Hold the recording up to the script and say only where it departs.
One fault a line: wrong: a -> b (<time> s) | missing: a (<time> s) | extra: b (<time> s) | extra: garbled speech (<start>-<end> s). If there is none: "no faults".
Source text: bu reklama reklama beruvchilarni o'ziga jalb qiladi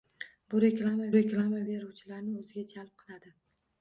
no faults